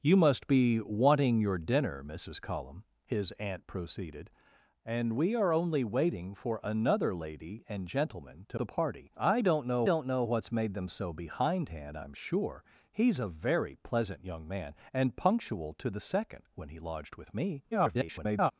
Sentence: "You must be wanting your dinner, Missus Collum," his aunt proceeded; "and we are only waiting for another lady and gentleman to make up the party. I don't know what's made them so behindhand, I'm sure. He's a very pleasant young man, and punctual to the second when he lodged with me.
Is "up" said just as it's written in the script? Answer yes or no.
no